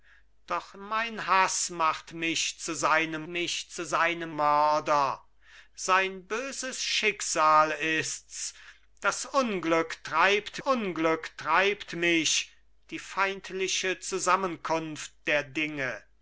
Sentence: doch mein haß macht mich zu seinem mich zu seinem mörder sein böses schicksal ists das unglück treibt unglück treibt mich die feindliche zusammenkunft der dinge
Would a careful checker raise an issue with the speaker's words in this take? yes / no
no